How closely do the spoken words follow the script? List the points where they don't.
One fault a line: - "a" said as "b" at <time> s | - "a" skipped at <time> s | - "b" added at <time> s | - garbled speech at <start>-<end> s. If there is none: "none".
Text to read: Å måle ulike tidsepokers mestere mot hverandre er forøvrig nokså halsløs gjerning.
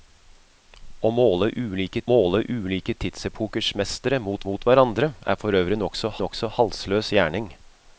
- "måle ulike" added at 2.1 s
- "mot" added at 4.5 s
- "nokså" added at 6.2 s